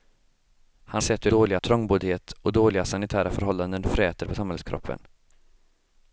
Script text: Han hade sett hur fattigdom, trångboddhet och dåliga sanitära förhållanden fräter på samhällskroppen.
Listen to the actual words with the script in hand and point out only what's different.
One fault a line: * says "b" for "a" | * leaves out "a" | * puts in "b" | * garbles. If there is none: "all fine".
* leaves out "hade"
* says "dåliga" for "fattigdom"